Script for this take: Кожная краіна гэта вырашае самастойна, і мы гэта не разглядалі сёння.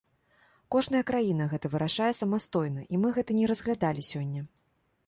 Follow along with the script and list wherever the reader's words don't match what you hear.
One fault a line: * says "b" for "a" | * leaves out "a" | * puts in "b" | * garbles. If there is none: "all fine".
all fine